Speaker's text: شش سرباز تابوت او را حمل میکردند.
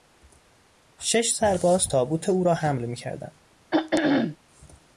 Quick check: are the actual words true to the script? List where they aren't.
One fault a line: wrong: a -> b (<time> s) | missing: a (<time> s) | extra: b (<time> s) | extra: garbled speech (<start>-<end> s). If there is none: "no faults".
no faults